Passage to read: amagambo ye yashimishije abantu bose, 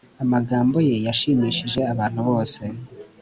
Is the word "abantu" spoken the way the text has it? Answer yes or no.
yes